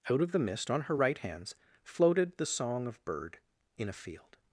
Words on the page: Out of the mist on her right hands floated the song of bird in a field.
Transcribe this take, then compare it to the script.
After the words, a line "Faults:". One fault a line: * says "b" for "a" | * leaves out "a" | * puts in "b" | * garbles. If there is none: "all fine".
Out of the mist on her right hands floated the song of bird in a field.
Faults:
all fine